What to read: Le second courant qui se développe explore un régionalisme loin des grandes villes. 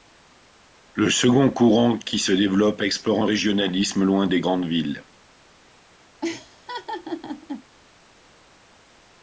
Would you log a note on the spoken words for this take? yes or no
no